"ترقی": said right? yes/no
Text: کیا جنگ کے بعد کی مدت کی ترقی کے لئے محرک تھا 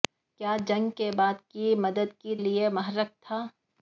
no